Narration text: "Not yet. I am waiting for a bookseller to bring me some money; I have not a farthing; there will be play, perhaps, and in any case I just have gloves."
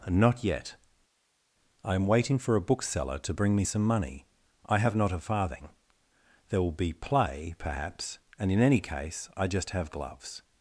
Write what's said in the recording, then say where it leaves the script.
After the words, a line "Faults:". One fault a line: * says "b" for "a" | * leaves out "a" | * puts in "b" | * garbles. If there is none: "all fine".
"Not yet. I am waiting for a bookseller to bring me some money; I have not a farthing; there will be play, perhaps, and in any case I just have gloves."
Faults:
all fine